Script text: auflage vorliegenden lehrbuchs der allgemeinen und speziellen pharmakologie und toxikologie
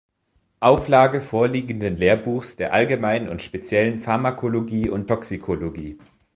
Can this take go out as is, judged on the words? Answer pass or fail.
pass